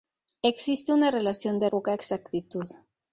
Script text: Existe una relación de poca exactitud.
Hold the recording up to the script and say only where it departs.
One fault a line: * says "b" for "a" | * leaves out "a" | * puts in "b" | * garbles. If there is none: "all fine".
all fine